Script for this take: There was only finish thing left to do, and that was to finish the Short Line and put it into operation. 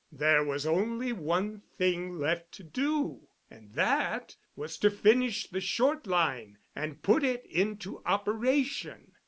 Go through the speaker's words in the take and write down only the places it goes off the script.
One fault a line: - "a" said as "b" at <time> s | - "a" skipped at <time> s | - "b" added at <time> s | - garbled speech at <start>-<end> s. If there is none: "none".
- "finish" said as "one" at 1.1 s